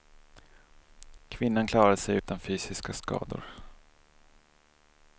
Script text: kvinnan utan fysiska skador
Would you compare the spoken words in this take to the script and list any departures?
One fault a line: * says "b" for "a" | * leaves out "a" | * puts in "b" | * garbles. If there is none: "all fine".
* puts in "klarade sig"